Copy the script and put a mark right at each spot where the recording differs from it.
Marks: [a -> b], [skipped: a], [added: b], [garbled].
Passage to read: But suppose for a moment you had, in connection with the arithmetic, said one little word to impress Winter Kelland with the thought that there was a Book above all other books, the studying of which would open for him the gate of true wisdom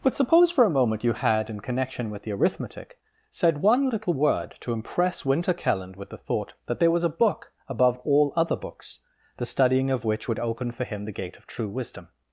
But suppose for a moment you had, in connection with the arithmetic, said one little word to impress Winter Kelland with the thought that there was a Book above all other books, the studying of which would open for him the gate of true wisdom